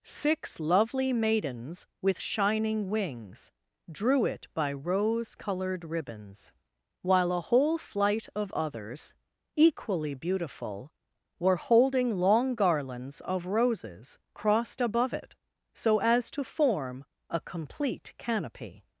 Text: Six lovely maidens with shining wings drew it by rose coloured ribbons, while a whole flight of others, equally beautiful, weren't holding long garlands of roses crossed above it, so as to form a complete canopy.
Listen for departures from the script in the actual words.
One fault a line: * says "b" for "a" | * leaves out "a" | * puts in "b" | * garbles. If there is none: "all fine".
* says "were" for "weren't"